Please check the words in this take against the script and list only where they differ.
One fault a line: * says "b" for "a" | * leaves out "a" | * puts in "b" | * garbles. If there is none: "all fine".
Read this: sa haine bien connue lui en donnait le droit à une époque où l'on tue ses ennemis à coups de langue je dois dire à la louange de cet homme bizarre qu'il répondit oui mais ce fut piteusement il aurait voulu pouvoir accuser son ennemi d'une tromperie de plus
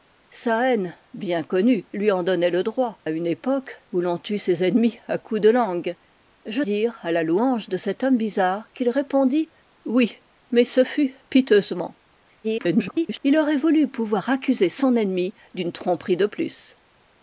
* leaves out "à"
* leaves out "dois"
* garbles